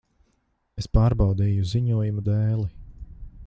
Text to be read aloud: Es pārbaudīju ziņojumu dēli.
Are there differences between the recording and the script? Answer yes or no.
no